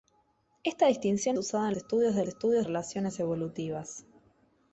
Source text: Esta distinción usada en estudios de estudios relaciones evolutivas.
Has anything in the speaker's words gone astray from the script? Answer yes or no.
no